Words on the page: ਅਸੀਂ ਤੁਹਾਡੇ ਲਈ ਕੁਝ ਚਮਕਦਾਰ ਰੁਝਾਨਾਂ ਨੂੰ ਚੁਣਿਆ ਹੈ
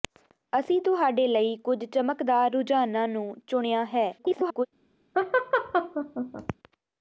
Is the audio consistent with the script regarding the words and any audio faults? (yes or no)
no